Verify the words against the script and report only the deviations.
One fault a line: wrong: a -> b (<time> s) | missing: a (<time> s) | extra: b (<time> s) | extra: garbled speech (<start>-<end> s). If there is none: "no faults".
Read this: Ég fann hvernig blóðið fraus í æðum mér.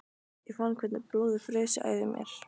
no faults